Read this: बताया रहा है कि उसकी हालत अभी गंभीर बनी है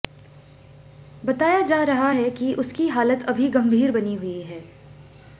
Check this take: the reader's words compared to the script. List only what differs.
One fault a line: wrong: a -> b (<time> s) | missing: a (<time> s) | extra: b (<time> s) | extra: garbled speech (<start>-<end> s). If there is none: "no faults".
extra: जा (1.6 s)
extra: हुई (4.2 s)